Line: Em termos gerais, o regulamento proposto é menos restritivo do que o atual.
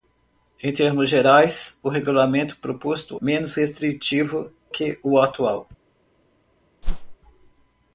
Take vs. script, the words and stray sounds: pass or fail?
fail